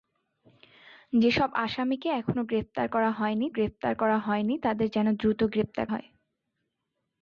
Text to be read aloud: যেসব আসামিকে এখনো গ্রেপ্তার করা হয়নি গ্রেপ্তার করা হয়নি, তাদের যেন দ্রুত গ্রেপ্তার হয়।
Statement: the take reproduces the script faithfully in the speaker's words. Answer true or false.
true